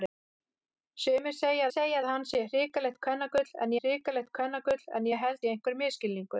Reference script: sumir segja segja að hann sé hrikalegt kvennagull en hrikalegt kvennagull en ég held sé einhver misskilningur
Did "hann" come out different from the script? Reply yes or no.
no